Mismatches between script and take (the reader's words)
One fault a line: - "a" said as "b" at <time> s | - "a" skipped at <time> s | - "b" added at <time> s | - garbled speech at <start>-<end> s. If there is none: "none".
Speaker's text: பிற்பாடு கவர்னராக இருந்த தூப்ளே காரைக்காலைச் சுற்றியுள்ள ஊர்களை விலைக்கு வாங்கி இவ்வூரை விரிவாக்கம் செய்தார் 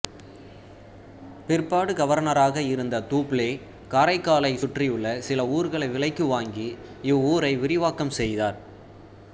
- "சில" added at 5.2 s